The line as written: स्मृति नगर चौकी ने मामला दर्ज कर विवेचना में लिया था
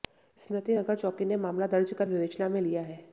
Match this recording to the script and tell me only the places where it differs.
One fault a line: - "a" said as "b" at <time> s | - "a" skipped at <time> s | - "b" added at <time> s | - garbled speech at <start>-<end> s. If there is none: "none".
- "था" said as "है" at 2.8 s